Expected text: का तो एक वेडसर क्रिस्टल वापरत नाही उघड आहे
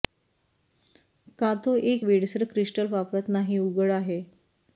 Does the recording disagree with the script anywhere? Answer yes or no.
no